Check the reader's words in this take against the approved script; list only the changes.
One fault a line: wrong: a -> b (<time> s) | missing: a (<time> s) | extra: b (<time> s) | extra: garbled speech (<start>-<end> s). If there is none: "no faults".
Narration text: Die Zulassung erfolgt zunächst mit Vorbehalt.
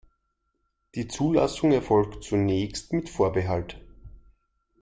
no faults